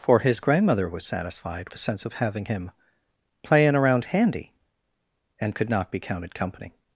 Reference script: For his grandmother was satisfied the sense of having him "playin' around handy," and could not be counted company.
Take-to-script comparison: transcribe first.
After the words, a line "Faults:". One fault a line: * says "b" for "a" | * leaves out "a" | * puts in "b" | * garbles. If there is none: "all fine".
For his grandmother was satisfied the sense of having him "playin' around handy," and could not be counted company.
Faults:
all fine